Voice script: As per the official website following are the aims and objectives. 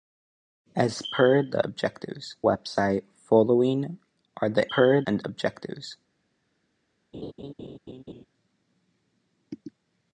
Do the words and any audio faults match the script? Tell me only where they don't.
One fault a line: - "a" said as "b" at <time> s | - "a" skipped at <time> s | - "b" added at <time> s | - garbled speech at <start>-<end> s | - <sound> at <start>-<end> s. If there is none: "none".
- "official" said as "objectives" at 1.6 s
- "aims" said as "per" at 4.7 s
- laugh at 7.1-8.3 s